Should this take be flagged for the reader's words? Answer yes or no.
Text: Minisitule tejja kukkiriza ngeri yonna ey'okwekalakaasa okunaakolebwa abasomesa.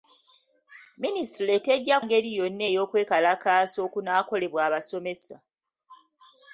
yes